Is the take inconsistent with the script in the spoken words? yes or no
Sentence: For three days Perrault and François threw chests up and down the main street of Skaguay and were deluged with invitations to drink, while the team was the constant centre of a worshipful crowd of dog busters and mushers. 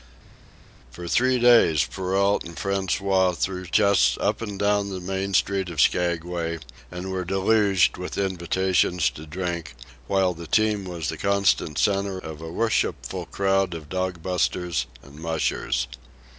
no